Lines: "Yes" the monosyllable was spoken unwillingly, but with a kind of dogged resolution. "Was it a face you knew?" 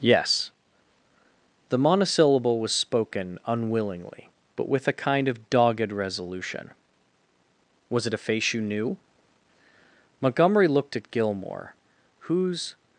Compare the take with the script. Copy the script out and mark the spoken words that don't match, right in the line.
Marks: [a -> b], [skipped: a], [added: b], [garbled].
"Yes" the monosyllable was spoken unwillingly, but with a kind of dogged resolution. "Was it a face you knew?" [added: Montgomery looked at Gilmore whose]